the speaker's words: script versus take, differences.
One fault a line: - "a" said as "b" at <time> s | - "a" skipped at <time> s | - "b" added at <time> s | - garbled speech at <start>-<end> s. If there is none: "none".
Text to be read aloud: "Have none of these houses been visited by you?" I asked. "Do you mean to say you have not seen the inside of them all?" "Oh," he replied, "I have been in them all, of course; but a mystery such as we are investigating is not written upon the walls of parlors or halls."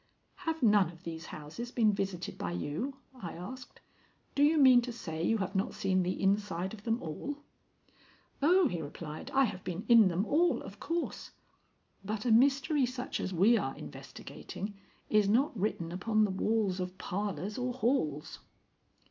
none